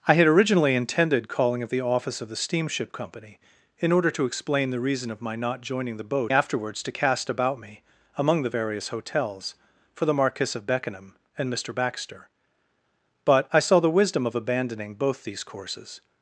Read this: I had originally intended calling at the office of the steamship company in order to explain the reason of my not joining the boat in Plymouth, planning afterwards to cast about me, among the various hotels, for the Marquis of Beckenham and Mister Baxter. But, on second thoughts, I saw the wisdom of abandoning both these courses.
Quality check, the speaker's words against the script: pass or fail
fail